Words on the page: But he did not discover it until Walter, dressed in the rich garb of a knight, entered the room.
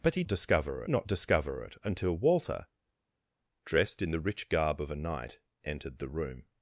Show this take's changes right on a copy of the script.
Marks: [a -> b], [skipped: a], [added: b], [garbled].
But he [did -> discover] not discover it until Walter, dressed in the rich garb of a knight, entered the room.